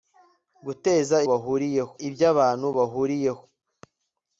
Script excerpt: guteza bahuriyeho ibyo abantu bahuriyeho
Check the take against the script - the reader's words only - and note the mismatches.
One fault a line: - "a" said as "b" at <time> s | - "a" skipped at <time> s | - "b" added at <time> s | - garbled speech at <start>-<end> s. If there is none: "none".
none